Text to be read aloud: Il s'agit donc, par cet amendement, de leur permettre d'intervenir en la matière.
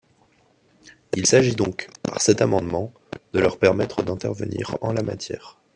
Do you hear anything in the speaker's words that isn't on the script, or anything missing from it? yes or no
no